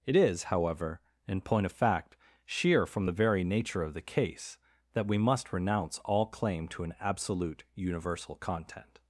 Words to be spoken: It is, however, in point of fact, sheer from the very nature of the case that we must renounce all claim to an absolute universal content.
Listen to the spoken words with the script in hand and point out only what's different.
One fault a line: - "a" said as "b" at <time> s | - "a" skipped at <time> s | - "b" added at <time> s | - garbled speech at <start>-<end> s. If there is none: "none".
none